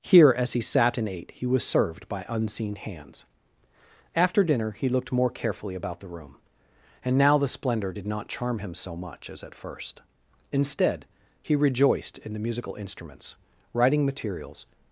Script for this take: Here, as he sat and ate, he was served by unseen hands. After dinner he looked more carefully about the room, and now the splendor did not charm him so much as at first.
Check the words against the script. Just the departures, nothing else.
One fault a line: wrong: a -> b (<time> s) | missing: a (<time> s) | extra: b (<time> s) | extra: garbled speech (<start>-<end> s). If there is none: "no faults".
extra: Instead he rejoiced in the musical instruments writing materials (10.5 s)